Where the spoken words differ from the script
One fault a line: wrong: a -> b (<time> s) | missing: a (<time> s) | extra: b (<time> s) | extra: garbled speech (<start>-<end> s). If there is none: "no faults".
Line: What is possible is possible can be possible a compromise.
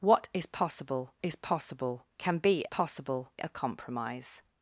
no faults